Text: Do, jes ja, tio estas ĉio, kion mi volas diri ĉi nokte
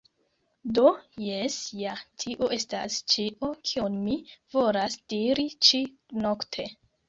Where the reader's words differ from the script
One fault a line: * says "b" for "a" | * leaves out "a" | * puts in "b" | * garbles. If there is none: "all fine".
all fine